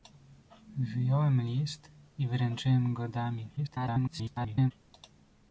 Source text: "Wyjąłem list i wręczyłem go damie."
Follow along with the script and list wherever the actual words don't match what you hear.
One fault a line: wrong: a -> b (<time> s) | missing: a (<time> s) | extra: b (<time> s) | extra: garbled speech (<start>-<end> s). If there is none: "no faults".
extra: garbled speech (3.6-4.7 s)